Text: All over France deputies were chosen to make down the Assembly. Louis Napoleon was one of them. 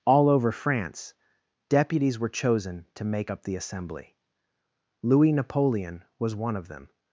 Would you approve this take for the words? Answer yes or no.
no